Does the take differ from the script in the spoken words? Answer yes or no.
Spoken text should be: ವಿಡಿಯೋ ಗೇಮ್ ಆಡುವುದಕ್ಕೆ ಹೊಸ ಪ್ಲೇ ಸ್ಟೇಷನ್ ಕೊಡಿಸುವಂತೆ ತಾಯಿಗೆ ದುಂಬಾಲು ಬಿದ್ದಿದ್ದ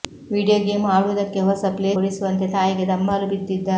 yes